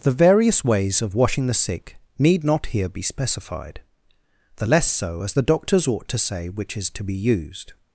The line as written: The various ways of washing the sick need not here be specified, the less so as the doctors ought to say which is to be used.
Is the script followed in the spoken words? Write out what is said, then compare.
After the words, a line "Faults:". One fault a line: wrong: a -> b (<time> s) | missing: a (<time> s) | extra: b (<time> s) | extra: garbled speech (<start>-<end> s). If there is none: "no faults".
The various ways of washing the sick need not here be specified, the less so as the doctors ought to say which is to be used.
Faults:
no faults